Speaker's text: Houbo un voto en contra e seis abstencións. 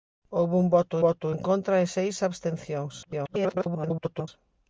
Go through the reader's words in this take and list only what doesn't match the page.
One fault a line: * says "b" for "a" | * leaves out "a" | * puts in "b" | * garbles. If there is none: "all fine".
* puts in "voto"
* garbles